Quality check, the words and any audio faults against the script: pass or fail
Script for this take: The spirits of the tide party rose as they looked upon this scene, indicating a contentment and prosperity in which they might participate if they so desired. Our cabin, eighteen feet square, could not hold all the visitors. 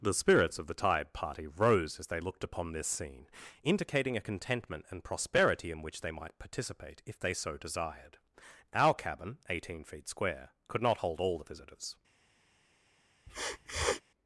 fail